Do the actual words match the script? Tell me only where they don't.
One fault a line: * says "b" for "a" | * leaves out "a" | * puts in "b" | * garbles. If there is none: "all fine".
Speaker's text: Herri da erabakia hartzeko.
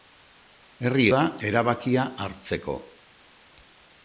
all fine